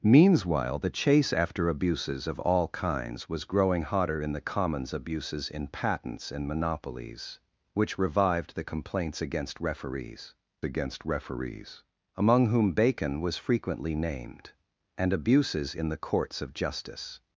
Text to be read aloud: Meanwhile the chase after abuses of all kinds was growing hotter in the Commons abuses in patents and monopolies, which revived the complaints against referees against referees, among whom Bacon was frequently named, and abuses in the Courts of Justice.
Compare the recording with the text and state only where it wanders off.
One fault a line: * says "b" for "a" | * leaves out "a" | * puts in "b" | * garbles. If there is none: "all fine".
all fine